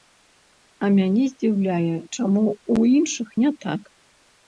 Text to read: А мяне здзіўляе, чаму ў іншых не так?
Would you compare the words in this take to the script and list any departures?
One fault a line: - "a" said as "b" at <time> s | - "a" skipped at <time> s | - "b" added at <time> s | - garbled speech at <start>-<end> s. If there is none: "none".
none